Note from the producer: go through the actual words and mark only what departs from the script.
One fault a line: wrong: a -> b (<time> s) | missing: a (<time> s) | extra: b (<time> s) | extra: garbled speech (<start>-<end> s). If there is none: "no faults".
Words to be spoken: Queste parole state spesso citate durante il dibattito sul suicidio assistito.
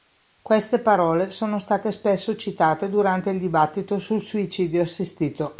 extra: sono (1.3 s)